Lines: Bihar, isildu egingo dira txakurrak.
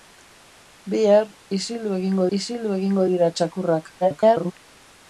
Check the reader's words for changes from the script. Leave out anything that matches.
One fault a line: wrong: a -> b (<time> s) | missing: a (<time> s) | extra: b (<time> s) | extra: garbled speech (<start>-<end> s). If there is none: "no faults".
extra: isildu egingo (2.4 s)
extra: garbled speech (4.0-4.5 s)